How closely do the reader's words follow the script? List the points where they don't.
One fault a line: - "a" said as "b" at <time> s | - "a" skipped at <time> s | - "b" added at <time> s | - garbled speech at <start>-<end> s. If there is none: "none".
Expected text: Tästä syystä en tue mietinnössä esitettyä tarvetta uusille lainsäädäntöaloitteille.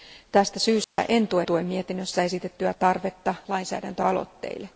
- "tue" added at 1.4 s
- "uusille" skipped at 3.4 s